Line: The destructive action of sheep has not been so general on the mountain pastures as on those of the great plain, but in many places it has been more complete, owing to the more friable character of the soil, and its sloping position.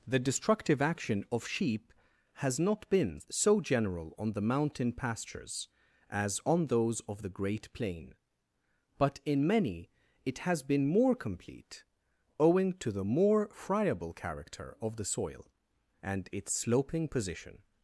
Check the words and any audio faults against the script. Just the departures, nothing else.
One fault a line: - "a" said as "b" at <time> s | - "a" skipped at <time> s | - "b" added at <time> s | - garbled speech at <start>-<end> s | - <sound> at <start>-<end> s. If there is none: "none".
- "places" skipped at 9.9 s